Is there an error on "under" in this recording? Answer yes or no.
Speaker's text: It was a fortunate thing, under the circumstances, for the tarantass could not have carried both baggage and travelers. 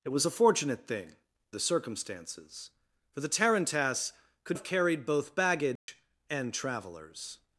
yes